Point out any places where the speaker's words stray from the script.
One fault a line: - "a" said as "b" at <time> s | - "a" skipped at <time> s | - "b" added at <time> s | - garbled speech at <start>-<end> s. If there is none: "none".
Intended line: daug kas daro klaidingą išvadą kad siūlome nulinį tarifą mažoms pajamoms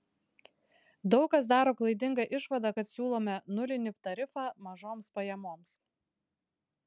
none